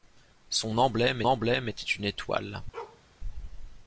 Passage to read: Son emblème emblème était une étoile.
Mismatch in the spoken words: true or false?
false